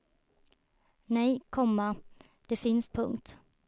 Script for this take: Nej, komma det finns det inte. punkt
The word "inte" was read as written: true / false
false